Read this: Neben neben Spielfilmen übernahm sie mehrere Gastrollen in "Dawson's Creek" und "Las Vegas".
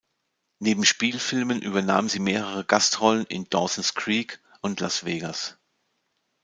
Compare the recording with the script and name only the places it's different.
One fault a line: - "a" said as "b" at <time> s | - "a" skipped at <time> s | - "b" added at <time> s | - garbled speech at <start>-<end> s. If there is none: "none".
- "neben" skipped at 0.8 s